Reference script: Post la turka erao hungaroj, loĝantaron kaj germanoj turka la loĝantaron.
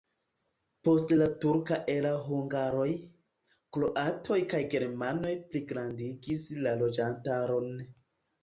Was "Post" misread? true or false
false